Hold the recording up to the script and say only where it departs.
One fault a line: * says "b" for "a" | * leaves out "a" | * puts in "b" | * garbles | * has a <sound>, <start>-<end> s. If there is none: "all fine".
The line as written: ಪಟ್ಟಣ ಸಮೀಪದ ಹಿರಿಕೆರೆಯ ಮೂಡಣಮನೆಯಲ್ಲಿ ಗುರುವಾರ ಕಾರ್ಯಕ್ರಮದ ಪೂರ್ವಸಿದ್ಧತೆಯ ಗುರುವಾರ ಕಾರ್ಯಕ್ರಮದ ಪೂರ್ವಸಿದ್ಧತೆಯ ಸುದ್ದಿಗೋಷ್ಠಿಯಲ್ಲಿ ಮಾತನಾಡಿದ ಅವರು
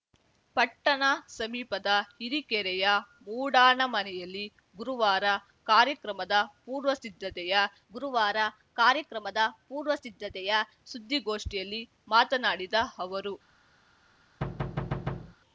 * has a thud, 14.4-15.4 s